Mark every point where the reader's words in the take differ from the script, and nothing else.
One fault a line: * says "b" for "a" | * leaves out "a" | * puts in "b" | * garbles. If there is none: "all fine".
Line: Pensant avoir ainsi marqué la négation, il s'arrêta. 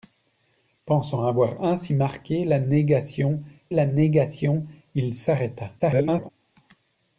* puts in "la négation"
* garbles